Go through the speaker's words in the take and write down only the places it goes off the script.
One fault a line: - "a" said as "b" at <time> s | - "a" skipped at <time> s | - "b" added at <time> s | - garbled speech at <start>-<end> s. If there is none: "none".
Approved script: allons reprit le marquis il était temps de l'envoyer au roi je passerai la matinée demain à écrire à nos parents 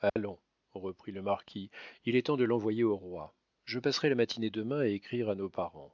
- "était" said as "est" at 2.2 s